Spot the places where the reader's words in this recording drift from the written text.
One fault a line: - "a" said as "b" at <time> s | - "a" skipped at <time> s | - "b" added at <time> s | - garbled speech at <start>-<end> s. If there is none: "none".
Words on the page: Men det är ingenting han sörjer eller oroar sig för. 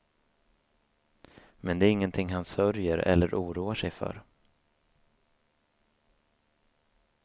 none